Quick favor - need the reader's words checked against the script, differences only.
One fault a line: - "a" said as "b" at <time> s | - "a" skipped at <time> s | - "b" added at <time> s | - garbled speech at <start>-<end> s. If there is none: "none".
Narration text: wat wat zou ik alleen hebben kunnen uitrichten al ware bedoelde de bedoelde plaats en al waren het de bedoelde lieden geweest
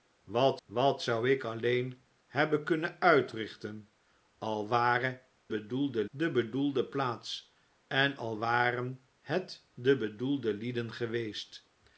none